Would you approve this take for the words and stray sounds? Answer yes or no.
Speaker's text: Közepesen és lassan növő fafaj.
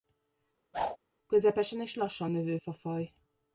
no